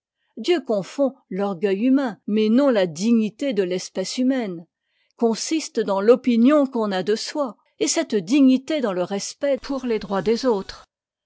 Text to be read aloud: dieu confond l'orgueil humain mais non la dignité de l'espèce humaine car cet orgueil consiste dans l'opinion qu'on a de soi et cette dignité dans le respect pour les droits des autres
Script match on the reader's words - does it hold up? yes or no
no